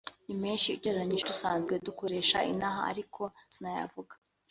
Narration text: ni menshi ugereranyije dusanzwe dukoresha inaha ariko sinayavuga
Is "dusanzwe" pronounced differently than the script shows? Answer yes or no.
no